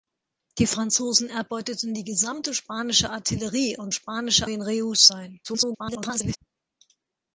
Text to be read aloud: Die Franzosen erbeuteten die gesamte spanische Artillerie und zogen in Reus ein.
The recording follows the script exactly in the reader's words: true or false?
false